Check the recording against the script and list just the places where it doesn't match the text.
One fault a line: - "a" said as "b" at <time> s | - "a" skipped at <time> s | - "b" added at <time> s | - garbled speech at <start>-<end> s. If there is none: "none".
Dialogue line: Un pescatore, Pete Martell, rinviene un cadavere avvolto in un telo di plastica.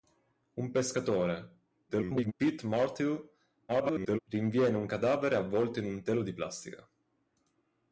- garbled speech at 1.9-2.3 s
- garbled speech at 3.7-4.2 s